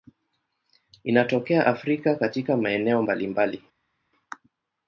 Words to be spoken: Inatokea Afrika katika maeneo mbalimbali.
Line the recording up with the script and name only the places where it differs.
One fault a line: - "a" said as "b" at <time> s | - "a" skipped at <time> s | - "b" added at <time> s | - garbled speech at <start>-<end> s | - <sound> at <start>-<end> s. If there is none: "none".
none